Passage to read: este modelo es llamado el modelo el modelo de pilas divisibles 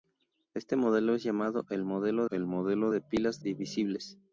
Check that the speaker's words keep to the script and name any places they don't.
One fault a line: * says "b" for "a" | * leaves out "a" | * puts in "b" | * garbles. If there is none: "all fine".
all fine